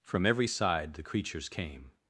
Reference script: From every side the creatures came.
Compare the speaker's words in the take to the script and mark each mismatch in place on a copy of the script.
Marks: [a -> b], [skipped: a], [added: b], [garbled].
From every side the creatures came.